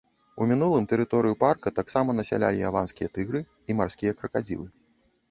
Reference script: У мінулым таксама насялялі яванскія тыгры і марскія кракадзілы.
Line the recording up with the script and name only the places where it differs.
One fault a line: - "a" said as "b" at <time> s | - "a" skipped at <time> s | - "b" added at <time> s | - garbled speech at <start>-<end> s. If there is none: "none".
- "тэрыторыю парка" added at 0.9 s